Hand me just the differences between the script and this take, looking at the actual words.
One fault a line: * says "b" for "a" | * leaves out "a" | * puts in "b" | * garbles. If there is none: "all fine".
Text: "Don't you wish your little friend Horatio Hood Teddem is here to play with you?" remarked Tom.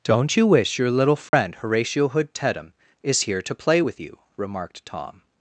all fine